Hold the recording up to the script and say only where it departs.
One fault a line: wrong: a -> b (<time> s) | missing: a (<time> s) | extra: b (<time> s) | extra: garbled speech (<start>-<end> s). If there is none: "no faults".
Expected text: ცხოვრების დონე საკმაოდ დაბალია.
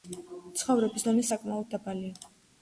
no faults